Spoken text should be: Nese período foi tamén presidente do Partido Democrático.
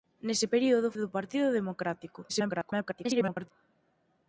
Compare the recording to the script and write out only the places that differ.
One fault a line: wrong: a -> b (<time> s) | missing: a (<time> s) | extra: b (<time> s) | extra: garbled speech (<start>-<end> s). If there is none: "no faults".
missing: foi tamén presidente (0.9 s)
extra: garbled speech (2.3-3.5 s)